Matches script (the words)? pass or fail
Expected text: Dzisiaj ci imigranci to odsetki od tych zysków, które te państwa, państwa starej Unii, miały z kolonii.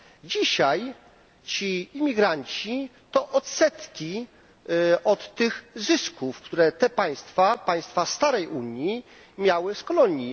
pass